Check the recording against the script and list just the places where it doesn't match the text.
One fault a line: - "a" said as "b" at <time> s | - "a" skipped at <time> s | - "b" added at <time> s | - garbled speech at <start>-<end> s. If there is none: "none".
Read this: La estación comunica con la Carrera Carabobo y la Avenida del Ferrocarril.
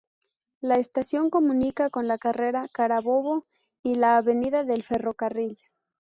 none